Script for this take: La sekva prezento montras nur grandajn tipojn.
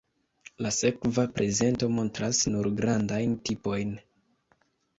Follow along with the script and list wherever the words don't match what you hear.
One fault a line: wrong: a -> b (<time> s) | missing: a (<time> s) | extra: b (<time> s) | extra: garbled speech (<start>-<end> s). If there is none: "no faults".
no faults